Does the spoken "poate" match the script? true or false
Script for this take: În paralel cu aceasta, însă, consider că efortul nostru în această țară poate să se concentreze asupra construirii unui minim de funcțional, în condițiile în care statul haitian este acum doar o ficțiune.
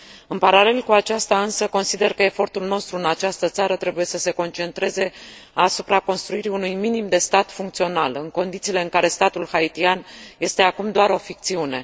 false